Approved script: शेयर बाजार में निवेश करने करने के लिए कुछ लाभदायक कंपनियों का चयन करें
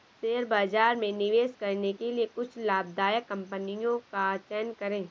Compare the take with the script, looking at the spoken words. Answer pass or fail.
fail